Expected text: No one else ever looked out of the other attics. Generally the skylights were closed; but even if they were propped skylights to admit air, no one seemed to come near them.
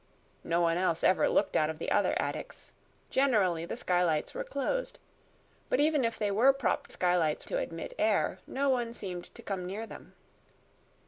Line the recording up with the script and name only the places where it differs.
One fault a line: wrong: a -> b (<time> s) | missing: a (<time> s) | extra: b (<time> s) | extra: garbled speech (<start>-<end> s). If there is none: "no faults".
no faults